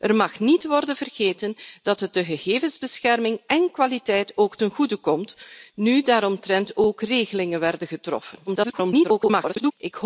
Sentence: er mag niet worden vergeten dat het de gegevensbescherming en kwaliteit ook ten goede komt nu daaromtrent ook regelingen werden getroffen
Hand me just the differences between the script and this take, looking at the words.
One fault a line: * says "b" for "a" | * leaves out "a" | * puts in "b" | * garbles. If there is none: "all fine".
* garbles